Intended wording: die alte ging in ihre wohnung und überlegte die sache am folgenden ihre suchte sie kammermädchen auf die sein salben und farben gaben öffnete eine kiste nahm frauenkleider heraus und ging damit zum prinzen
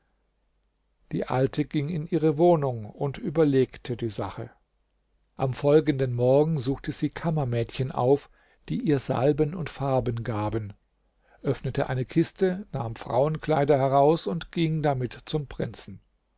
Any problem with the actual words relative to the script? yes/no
yes